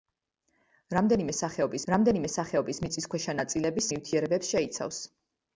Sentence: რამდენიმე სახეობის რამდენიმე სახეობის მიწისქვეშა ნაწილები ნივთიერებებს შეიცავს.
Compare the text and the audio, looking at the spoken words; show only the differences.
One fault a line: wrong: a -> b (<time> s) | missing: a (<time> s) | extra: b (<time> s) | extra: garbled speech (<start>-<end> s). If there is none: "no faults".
no faults